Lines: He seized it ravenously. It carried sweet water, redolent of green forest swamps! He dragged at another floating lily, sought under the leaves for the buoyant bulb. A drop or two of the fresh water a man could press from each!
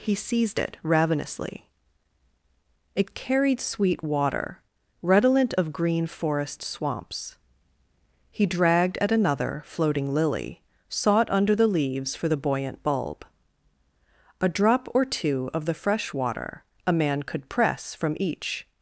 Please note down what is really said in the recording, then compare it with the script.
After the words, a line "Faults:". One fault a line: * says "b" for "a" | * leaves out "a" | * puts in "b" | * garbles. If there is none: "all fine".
He seized it ravenously. It carried sweet water, redolent of green forest swamps! He dragged at another floating lily, sought under the leaves for the buoyant bulb. A drop or two of the fresh water a man could press from each!
Faults:
all fine